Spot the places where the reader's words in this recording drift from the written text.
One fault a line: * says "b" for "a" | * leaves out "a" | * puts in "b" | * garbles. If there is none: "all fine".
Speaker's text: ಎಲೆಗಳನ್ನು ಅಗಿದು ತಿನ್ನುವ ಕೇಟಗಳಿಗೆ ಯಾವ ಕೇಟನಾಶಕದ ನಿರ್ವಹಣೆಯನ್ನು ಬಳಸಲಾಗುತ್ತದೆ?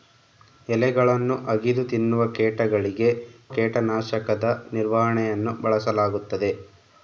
* leaves out "ಯಾವ"